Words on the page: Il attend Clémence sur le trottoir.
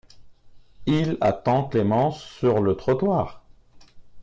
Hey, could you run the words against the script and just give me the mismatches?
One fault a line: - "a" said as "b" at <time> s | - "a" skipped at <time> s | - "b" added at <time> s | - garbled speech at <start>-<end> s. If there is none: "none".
none